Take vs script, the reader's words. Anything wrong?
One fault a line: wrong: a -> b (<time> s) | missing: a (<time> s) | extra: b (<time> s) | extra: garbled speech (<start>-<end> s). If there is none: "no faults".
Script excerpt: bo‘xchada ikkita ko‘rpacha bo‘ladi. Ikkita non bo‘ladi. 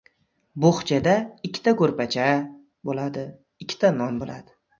no faults